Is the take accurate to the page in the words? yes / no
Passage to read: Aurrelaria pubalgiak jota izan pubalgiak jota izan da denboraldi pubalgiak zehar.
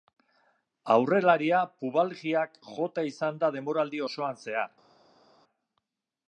no